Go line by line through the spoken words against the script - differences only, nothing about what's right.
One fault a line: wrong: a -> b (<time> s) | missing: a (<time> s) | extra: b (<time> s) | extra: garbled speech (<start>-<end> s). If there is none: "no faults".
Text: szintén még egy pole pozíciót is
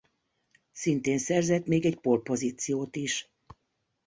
extra: szerzett (1.2 s)